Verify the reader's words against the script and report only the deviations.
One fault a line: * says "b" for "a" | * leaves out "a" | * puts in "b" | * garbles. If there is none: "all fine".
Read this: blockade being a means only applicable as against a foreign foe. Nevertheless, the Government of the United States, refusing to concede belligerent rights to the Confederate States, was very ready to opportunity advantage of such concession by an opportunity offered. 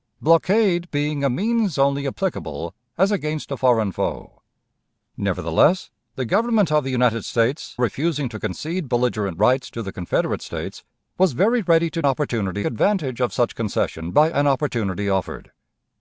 all fine